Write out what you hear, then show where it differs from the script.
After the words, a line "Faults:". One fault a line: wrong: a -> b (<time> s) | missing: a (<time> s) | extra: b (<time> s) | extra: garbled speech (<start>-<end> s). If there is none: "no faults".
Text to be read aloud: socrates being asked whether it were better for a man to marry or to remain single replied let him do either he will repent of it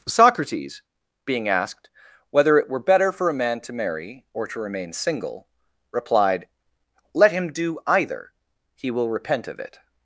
socrates being asked whether it were better for a man to marry or to remain single replied let him do either he will repent of it
Faults:
no faults